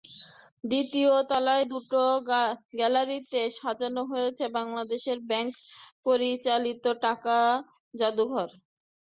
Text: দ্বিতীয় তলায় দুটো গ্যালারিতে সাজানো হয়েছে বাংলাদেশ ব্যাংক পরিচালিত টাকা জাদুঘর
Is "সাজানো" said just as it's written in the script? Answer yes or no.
yes